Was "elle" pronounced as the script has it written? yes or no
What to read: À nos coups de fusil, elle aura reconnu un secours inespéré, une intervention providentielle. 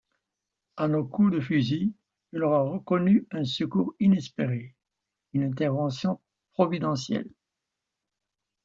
no